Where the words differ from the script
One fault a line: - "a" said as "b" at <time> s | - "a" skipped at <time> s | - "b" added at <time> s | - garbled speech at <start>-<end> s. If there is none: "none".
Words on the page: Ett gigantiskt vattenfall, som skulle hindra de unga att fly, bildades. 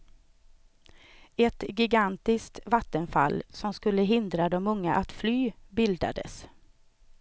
none